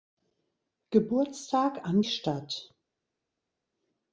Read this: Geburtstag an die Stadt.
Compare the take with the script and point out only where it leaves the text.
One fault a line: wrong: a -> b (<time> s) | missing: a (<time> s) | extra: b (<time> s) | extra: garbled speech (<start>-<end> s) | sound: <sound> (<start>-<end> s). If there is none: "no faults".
missing: die (2.0 s)